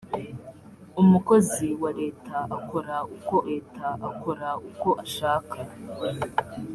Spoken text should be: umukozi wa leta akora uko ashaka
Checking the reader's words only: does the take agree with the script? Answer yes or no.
no